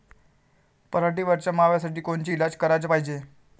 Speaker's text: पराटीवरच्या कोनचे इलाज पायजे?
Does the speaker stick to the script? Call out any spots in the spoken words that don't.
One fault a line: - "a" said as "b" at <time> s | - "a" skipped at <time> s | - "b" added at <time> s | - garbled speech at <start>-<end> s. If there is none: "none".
- "माव्यासाठी" added at 1.5 s
- "कराच" added at 2.6 s